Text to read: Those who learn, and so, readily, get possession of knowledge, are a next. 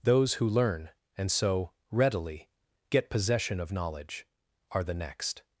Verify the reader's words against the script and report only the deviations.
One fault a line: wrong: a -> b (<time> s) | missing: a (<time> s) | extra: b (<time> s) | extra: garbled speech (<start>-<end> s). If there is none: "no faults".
wrong: a -> the (4.8 s)